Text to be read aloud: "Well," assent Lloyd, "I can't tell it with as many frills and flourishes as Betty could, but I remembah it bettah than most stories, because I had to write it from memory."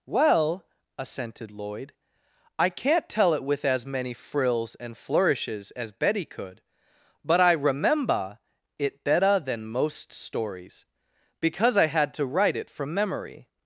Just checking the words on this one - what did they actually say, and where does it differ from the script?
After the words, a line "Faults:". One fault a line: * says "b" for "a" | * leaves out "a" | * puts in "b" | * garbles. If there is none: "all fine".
"Well," assented Lloyd, "I can't tell it with as many frills and flourishes as Betty could, but I remembah it bettah than most stories, because I had to write it from memory."
Faults:
* says "assented" for "assent"